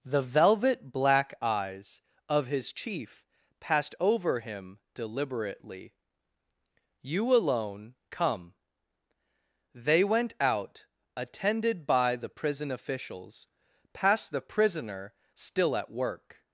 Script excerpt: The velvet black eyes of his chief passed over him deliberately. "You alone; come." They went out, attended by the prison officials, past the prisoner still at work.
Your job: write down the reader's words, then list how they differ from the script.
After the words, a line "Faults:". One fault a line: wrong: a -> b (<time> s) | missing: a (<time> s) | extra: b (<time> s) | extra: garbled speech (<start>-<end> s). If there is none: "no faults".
The velvet black eyes of his chief passed over him deliberately. "You alone; come." They went out, attended by the prison officials, past the prisoner still at work.
Faults:
no faults